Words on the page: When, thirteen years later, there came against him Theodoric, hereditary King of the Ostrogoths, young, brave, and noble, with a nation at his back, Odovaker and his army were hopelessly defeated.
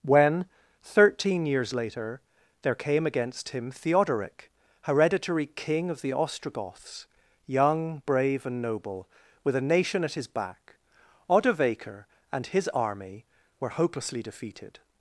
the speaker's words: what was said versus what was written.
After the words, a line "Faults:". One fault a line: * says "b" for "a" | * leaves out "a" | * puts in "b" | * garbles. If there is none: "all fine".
When, thirteen years later, there came against him Theodoric, hereditary King of the Ostrogoths, young, brave, and noble, with a nation at his back, Odovaker and his army were hopelessly defeated.
Faults:
all fine